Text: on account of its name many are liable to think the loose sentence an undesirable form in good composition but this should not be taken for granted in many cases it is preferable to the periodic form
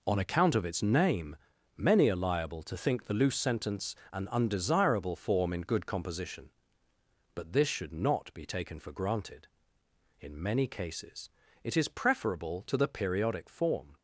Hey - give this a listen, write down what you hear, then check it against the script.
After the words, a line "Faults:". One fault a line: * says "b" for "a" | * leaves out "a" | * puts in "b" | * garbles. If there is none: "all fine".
on account of its name many are liable to think the loose sentence an undesirable form in good composition but this should not be taken for granted in many cases it is preferable to the periodic form
Faults:
all fine